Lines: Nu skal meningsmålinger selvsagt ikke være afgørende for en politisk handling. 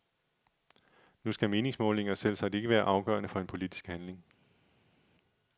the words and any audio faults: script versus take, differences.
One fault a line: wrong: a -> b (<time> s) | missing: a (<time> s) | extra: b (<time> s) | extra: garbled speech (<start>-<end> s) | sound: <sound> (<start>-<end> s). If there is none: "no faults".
no faults